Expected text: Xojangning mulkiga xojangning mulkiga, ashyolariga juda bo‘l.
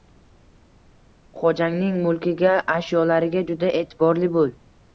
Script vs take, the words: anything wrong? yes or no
yes